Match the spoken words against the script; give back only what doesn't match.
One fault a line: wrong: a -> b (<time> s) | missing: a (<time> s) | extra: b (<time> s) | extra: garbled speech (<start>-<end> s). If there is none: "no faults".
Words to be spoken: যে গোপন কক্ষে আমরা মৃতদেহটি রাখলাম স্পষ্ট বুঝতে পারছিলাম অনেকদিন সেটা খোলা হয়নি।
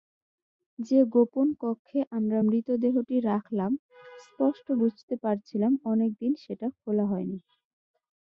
no faults